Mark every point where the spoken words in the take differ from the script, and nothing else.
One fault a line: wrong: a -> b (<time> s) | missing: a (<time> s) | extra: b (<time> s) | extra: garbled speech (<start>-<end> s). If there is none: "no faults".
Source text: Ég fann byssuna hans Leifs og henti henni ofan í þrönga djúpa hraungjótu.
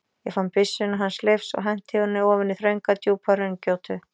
no faults